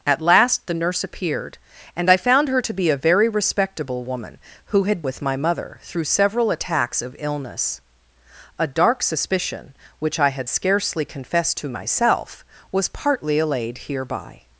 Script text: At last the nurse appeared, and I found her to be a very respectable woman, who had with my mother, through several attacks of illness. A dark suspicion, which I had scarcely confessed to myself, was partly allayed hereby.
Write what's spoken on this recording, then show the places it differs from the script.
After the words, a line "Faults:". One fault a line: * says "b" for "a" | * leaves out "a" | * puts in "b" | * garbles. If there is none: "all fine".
At last the nurse appeared, and I found her to be a very respectable woman, who had with my mother, through several attacks of illness. A dark suspicion, which I had scarcely confessed to myself, was partly allayed hereby.
Faults:
all fine